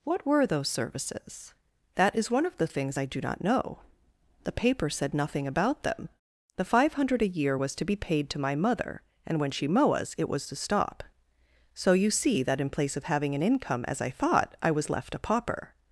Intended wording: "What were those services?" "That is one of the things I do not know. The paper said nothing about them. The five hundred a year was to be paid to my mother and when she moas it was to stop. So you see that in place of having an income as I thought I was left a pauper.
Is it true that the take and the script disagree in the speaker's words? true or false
false